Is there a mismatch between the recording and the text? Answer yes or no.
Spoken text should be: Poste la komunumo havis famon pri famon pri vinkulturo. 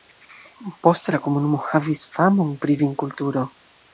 yes